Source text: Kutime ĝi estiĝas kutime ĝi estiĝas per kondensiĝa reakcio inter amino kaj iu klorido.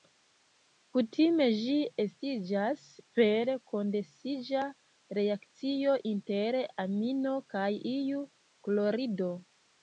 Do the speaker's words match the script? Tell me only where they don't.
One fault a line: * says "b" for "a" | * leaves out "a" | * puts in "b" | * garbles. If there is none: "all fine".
* leaves out "kutime ĝi estiĝas"